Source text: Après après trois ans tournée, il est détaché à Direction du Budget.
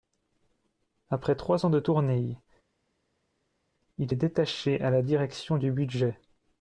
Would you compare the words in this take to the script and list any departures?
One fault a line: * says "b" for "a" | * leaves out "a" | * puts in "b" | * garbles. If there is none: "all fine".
* leaves out "après"
* puts in "de"
* puts in "la"